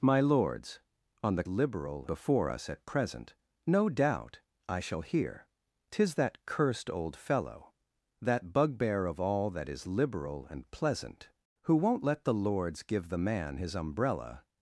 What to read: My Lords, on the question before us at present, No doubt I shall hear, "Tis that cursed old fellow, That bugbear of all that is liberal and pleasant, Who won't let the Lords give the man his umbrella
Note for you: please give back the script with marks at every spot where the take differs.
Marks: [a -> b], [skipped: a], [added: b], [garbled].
My Lords, on the [question -> liberal] before us at present, No doubt I shall hear, "Tis that cursed old fellow, That bugbear of all that is liberal and pleasant, Who won't let the Lords give the man his umbrella